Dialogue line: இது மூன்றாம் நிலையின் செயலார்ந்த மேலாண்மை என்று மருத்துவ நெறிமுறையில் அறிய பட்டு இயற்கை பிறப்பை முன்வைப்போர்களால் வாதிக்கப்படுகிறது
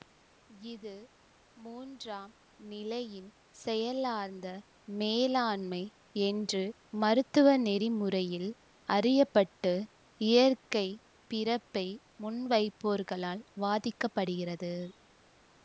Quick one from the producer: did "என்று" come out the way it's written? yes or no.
yes